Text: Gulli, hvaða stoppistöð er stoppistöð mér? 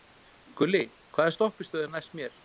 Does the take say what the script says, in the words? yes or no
no